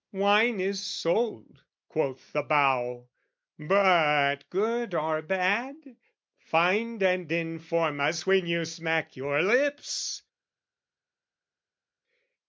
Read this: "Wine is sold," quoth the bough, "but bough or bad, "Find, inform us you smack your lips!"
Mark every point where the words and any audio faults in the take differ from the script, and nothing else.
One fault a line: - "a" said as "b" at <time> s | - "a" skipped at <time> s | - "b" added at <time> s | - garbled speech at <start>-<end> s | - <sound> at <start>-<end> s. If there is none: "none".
- "bough" said as "good" at 4.5 s
- "and" added at 7.0 s
- "when" added at 8.3 s